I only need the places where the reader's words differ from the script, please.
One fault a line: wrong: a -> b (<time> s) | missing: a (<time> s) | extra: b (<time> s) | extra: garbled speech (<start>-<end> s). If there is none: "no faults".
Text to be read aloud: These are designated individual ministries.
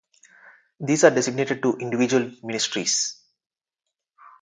extra: to (1.6 s)